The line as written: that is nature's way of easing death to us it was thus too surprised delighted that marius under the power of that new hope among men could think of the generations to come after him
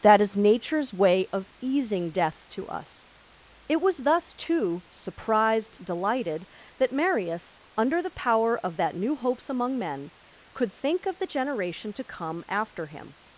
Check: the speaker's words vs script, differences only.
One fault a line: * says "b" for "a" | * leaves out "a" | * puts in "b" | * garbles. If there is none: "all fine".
* says "hopes" for "hope"
* says "generation" for "generations"